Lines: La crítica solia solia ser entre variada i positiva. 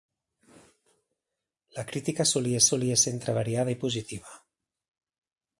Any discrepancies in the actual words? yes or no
no